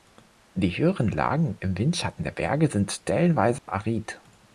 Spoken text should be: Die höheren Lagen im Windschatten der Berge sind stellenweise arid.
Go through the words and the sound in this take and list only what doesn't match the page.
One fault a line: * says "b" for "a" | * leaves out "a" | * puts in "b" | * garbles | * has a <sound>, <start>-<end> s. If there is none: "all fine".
* has a dropout, 3.6-3.7 s